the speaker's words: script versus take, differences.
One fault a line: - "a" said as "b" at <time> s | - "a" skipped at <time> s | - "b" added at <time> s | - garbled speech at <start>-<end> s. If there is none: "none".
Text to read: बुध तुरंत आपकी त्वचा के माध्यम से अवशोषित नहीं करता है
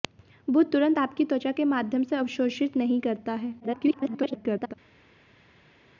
- garbled speech at 3.6-4.7 s